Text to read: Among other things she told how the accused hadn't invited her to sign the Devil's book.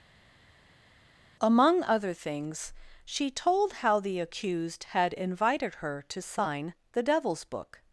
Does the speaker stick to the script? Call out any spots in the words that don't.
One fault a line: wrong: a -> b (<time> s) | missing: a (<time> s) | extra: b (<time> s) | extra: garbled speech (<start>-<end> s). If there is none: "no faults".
wrong: hadn't -> had (4.8 s)